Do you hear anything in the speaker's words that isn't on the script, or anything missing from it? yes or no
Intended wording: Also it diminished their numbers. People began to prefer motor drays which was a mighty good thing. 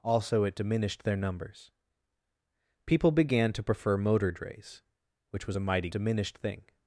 yes